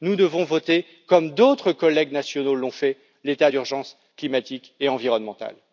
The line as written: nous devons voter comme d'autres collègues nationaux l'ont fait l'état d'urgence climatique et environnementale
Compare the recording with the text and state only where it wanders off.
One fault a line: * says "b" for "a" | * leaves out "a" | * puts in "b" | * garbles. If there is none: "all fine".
all fine